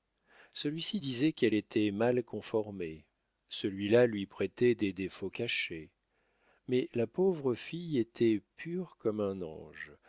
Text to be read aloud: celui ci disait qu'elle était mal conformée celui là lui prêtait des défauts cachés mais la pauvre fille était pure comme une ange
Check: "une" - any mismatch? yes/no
yes